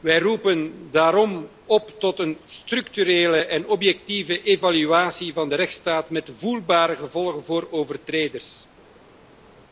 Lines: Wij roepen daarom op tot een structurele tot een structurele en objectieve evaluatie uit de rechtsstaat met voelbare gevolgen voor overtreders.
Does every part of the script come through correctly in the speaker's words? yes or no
no